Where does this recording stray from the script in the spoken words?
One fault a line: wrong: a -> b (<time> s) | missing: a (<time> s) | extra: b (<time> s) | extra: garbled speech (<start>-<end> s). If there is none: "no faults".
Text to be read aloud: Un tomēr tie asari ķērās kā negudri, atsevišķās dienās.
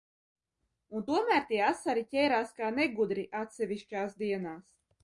no faults